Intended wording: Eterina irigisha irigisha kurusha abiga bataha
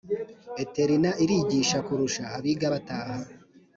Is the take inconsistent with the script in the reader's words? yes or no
yes